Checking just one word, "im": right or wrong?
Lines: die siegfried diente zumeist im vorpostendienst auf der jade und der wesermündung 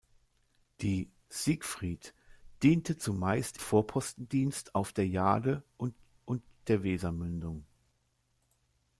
wrong